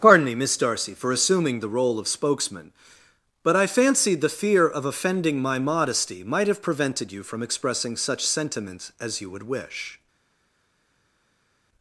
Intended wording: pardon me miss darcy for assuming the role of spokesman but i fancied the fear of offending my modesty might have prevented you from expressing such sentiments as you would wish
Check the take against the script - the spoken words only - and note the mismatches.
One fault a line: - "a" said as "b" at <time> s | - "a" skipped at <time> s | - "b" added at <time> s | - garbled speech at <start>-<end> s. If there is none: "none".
none